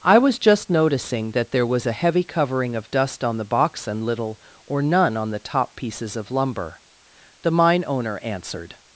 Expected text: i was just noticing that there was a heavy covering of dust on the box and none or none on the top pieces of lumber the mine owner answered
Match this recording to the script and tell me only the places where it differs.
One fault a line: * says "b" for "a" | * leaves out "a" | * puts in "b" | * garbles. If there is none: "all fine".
* says "little" for "none"